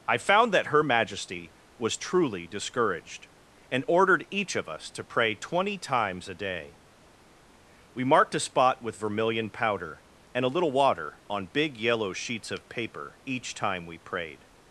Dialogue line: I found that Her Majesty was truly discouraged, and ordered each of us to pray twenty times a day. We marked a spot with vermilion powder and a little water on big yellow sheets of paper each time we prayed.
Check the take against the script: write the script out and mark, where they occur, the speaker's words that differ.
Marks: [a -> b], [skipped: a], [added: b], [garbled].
I found that Her Majesty was truly discouraged, and ordered each of us to pray twenty times a day. We marked a spot with vermilion powder and a little water on big yellow sheets of paper each time we prayed.